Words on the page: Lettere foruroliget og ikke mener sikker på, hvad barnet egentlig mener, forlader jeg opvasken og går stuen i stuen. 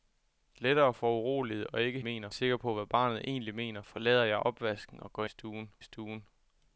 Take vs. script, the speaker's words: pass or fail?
pass